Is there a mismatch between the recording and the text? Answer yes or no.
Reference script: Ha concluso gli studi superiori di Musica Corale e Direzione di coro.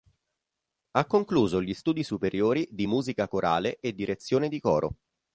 no